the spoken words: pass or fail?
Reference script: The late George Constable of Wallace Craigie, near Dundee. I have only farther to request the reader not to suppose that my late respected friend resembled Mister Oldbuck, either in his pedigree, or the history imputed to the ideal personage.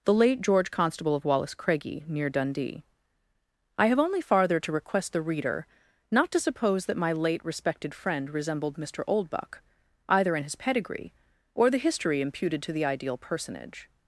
pass